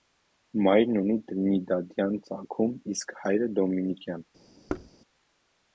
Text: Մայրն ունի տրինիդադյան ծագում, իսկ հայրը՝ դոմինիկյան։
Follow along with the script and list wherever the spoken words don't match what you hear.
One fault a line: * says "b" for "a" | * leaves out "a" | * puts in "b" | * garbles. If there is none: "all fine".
all fine